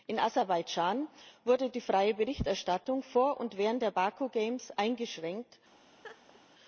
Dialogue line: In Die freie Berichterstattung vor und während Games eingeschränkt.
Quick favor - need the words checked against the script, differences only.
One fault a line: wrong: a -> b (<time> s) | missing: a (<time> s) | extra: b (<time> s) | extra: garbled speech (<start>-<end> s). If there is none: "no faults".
extra: Aserbaidschan wurde (0.2 s)
extra: der Baku (3.8 s)